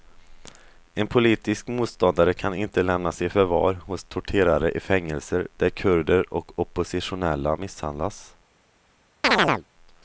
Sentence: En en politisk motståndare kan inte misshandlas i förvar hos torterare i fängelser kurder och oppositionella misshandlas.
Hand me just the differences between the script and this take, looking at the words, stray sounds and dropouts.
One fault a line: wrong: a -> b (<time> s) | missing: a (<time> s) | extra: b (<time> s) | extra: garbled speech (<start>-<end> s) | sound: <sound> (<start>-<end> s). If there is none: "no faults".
missing: en (1.1 s)
wrong: misshandlas -> lämnas (2.8 s)
extra: där (5.6 s)
sound: chirp (9.2-9.6 s)